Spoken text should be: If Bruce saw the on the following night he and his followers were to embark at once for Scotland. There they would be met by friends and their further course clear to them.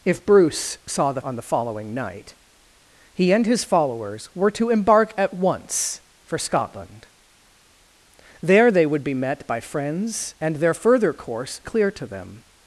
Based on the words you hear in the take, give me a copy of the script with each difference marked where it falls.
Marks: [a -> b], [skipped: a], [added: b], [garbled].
If Bruce saw the on the following night he and his followers were to embark at once for Scotland. There they would be met by friends and their further course clear to them.